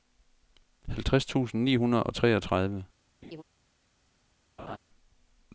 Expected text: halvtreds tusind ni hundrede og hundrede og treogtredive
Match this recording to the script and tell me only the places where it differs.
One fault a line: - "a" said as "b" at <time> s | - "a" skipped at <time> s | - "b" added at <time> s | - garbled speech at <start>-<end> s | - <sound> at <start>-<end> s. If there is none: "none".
- "hundrede og" skipped at 2.1 s
- laugh at 3.2-3.4 s
- laugh at 4.6-4.8 s